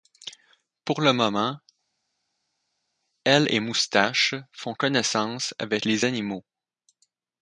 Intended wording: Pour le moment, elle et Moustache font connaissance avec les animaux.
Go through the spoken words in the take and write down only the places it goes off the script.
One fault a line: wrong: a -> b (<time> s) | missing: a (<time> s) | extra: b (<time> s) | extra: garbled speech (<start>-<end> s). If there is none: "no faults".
no faults